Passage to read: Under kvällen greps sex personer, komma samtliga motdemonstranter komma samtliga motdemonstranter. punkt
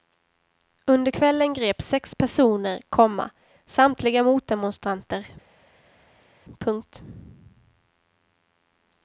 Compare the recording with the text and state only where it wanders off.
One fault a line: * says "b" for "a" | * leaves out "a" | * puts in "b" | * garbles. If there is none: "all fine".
* leaves out "komma samtliga motdemonstranter"